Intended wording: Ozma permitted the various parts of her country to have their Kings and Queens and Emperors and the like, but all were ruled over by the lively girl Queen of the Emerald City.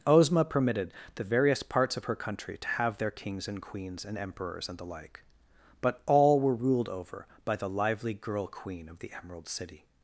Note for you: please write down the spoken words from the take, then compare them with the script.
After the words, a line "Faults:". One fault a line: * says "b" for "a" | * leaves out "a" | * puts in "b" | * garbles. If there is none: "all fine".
Ozma permitted the various parts of her country to have their Kings and Queens and Emperors and the like, but all were ruled over by the lively girl Queen of the Emerald City.
Faults:
all fine